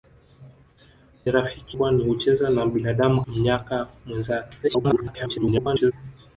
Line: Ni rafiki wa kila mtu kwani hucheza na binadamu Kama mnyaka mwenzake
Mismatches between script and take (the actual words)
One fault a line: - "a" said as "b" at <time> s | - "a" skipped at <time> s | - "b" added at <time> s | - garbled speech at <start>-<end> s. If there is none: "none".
- "wa kila mtu" skipped at 1.8 s
- "Kama" skipped at 3.2 s
- garbled speech at 4.6-5.9 s